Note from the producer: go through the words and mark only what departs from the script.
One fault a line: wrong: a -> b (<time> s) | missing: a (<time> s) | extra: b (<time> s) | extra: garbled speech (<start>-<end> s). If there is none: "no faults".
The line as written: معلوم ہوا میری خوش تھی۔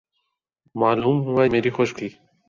no faults